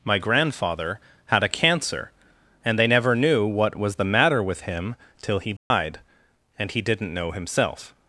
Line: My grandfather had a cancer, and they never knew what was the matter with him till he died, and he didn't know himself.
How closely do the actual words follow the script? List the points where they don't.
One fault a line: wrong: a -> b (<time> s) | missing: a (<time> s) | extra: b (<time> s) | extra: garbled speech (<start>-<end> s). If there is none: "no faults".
no faults